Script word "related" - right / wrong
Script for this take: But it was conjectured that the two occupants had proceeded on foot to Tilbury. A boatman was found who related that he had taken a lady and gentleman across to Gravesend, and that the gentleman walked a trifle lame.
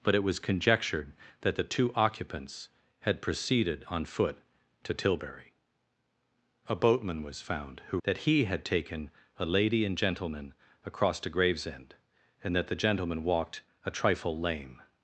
wrong